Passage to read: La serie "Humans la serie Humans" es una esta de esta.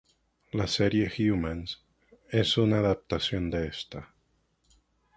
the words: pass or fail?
fail